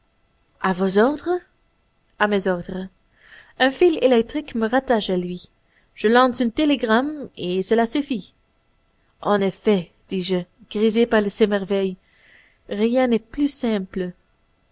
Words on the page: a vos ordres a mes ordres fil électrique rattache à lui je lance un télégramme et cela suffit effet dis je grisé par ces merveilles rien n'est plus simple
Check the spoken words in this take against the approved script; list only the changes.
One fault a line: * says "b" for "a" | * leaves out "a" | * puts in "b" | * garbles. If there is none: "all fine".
* puts in "un"
* puts in "me"
* puts in "en"